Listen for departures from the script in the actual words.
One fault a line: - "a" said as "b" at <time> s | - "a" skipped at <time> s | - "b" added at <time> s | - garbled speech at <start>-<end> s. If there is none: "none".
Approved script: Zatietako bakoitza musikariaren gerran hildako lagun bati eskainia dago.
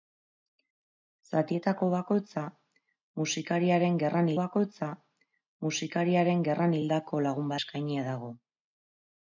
- "bakoitza musikariaren gerran" added at 4.4 s
- "bati" skipped at 7.5 s